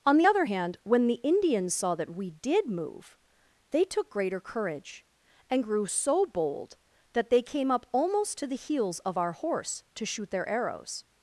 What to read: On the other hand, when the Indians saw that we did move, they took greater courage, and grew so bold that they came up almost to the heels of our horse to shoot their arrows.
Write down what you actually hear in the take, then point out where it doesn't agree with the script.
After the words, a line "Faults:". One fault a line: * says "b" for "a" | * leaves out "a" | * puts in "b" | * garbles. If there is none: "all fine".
On the other hand, when the Indians saw that we did move, they took greater courage, and grew so bold that they came up almost to the heels of our horse to shoot their arrows.
Faults:
all fine